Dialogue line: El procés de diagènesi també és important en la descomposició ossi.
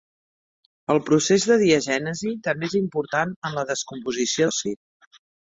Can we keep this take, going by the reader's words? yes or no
yes